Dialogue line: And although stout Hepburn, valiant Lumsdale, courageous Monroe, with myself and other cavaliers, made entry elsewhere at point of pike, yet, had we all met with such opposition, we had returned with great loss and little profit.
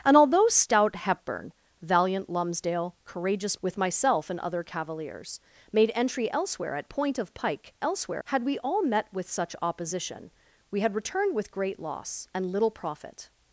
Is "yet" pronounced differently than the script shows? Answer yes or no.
yes